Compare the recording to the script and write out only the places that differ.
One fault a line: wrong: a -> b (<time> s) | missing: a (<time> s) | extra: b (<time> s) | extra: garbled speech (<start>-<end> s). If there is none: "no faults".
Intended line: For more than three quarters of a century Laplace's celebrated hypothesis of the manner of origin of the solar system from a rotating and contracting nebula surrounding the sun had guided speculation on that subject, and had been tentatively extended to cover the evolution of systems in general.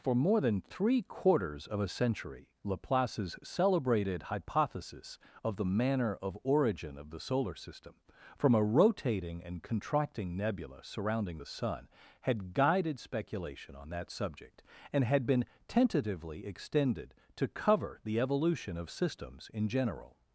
no faults